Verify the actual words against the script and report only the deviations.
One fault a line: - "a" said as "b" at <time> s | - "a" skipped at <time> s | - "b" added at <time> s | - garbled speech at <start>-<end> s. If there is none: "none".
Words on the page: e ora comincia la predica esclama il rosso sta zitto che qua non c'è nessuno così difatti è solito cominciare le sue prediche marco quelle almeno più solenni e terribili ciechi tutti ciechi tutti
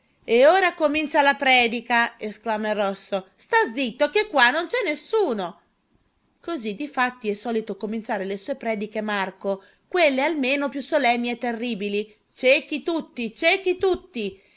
none